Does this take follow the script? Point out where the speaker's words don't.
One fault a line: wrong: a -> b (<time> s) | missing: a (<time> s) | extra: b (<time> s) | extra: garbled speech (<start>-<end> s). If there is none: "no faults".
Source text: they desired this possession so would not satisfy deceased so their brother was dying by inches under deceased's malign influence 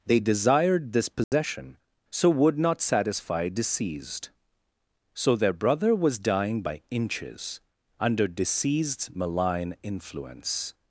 no faults